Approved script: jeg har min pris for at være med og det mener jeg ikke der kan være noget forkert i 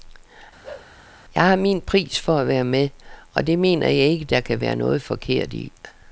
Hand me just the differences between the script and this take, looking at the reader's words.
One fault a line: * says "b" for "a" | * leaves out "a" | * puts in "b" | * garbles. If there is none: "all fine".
all fine